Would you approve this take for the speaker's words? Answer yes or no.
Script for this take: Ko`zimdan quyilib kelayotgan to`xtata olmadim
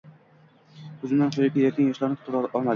no